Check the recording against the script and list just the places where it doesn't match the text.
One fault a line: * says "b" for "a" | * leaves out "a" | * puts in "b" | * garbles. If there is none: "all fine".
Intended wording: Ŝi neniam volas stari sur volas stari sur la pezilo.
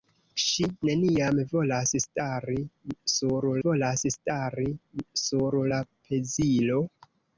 all fine